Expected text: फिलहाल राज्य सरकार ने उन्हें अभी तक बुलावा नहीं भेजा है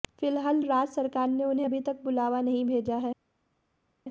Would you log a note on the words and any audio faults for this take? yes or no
no